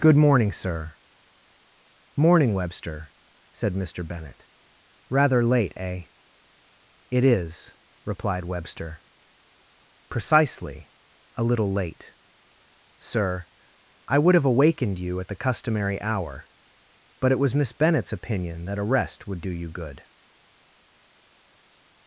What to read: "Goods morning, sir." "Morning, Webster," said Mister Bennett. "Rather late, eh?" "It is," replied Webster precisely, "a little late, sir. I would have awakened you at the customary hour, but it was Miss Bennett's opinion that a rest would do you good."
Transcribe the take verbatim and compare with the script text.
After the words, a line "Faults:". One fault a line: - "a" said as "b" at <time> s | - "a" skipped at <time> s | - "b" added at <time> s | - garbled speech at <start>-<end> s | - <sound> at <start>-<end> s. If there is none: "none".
"Good morning, sir." "Morning, Webster," said Mister Bennett. "Rather late, eh?" "It is," replied Webster precisely, "a little late, sir. I would have awakened you at the customary hour, but it was Miss Bennett's opinion that a rest would do you good."
Faults:
- "Goods" said as "Good" at 0.0 s